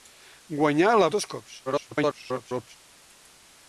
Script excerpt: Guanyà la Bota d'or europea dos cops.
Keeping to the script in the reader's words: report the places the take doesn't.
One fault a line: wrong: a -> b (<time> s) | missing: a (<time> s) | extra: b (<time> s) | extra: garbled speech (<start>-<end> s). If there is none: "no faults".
missing: Bota d'or europea (1.1 s)
extra: garbled speech (1.7-2.8 s)